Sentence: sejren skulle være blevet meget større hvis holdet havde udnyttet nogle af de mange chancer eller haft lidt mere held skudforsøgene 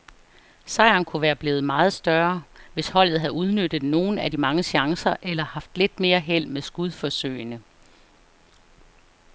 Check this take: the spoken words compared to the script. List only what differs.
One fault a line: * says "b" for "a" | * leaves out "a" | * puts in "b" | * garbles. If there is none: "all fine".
* says "kunne" for "skulle"
* puts in "med"